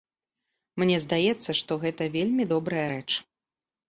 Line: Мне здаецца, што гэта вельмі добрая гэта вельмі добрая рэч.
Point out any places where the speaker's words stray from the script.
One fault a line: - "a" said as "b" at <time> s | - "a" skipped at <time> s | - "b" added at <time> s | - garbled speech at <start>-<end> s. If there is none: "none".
- "гэта вельмі добрая" skipped at 2.8 s